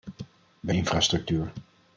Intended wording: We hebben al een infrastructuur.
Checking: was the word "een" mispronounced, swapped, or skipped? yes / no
yes